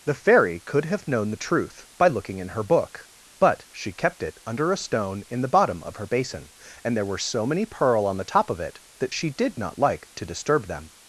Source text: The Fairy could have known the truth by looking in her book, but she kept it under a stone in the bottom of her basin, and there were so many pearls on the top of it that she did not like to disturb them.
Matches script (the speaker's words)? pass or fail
fail